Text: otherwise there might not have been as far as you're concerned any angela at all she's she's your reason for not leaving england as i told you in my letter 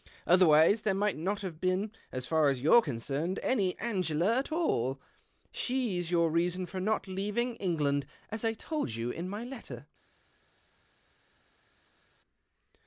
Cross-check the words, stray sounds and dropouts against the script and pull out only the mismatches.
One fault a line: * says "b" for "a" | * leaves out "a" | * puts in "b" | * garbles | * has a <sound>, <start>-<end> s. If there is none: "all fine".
* leaves out "she's"